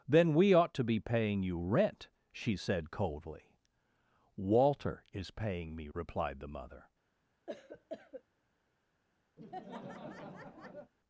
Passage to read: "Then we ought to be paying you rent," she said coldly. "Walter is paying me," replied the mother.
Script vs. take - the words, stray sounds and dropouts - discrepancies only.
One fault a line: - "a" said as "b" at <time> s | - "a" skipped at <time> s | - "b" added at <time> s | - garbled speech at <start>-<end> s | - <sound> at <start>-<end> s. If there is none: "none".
- cough at 7.5-8.2 s
- laugh at 9.4-10.9 s